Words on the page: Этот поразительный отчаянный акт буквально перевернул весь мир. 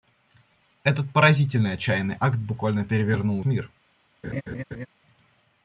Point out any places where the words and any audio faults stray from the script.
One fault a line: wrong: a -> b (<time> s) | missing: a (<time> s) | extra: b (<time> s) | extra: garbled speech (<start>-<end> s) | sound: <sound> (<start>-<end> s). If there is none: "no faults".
missing: весь (3.4 s)
sound: laugh (4.2-4.9 s)